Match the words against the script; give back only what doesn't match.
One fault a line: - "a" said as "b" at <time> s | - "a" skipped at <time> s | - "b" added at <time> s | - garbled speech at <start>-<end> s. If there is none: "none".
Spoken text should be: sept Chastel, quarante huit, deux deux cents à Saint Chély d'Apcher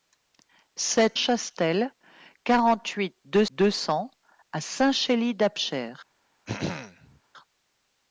none